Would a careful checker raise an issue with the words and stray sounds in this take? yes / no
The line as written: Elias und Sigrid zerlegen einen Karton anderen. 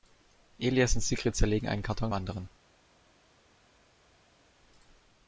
no